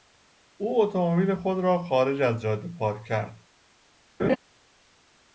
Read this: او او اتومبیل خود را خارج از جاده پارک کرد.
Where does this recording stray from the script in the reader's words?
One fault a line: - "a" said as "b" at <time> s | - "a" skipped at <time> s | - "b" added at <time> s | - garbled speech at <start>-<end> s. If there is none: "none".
- "او" skipped at 0.8 s